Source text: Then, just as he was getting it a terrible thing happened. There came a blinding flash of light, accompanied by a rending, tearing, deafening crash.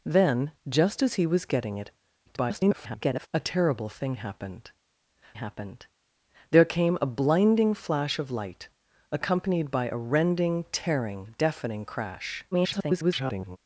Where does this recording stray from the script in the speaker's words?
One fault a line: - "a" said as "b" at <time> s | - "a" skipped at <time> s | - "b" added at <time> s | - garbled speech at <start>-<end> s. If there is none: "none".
- garbled speech at 2.3-3.3 s
- "happened" added at 5.3 s
- garbled speech at 12.5-13.6 s